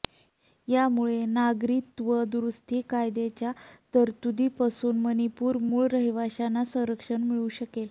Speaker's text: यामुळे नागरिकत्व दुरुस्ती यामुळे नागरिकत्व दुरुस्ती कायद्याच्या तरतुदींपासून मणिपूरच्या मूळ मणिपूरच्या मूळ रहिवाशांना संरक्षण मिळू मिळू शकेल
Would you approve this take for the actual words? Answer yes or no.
no